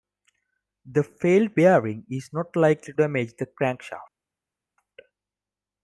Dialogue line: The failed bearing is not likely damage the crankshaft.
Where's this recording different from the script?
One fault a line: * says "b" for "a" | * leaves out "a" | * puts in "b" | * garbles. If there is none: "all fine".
all fine